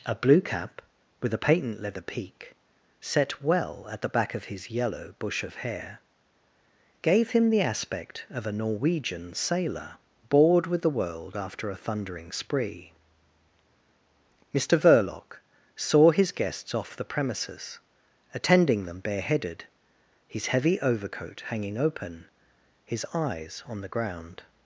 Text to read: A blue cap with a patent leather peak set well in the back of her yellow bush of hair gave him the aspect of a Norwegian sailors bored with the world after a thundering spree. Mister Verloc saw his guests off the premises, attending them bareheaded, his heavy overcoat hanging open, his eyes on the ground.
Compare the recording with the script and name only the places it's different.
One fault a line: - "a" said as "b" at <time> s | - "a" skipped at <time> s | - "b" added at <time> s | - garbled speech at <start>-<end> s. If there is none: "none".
- "in" said as "at" at 3.9 s
- "her" said as "his" at 4.4 s
- "sailors" said as "sailor" at 9.3 s